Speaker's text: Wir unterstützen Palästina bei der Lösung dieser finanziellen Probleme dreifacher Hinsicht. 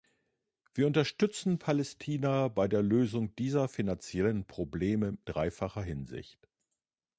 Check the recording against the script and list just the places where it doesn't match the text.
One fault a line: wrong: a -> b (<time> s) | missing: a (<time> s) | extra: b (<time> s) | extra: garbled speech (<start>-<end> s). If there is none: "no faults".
no faults